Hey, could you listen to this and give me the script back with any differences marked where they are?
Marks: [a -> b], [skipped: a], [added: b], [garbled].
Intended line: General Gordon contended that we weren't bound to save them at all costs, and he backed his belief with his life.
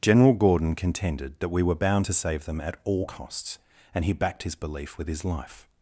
General Gordon contended that we [weren't -> were] bound to save them at all costs, and he backed his belief with his life.